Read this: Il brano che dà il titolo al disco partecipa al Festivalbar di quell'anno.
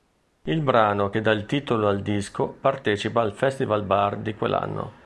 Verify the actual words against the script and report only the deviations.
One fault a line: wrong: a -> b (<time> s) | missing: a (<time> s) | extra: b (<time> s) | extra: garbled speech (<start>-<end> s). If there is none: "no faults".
no faults